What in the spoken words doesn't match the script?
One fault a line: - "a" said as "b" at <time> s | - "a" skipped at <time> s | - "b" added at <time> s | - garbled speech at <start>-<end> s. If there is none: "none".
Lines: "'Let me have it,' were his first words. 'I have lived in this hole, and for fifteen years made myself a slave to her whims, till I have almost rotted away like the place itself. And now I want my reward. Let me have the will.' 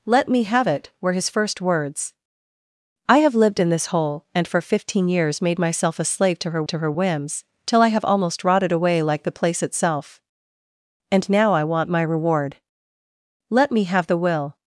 - "to her" added at 6.7 s